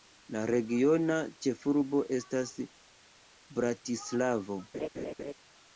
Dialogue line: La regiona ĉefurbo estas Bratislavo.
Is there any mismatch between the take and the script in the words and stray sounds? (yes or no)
yes